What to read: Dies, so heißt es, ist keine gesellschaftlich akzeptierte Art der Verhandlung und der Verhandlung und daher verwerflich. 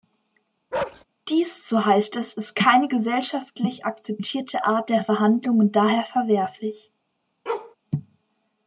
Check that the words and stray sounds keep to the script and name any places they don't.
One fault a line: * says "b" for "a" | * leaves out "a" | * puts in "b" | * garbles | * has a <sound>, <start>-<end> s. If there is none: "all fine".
* has a bark, 0.7-1.0 s
* leaves out "der Verhandlung und"
* has a bark, 7.5-7.8 s